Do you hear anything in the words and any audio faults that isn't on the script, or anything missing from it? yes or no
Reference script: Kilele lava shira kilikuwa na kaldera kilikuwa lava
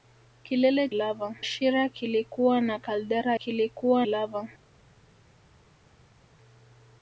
no